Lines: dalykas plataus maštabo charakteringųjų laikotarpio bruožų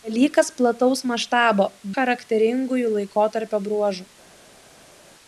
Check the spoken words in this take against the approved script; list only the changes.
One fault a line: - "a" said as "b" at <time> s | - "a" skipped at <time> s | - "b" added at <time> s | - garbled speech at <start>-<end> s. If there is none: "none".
none